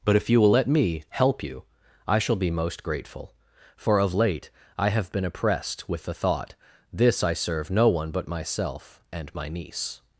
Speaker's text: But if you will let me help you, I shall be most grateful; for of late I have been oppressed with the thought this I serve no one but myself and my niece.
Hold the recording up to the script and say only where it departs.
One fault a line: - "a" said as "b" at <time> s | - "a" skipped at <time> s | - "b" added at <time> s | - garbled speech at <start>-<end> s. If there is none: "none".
none